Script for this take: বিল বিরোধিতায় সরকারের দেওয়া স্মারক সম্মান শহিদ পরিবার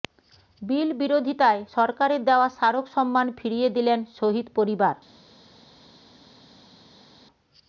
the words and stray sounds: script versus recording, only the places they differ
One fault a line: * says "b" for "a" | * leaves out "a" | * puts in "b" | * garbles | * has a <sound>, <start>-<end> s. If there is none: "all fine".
* puts in "ফিরিয়ে দিলেন"